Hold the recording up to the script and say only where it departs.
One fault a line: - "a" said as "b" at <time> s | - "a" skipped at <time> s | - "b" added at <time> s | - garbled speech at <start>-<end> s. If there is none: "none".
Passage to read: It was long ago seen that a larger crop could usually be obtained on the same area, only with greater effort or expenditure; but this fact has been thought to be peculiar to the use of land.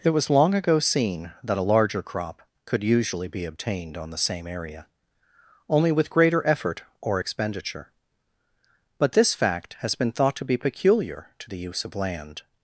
none